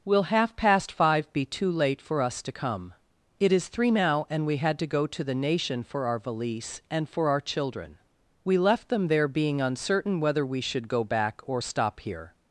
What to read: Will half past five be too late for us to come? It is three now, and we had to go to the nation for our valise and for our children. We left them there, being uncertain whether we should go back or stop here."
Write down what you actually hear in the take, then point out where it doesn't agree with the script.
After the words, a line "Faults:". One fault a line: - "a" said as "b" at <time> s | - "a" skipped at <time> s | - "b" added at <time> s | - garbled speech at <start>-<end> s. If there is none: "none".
Will half past five be too late for us to come? It is three now, and we had to go to the nation for our valise and for our children. We left them there, being uncertain whether we should go back or stop here."
Faults:
none